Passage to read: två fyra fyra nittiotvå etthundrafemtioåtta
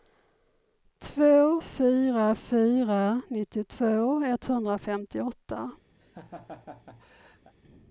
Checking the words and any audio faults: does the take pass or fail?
fail